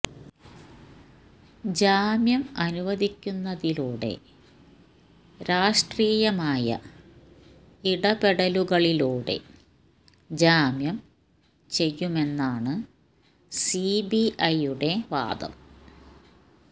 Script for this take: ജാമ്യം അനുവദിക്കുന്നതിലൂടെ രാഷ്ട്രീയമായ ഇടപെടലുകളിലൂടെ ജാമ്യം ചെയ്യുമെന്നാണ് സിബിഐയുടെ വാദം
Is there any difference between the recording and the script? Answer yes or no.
no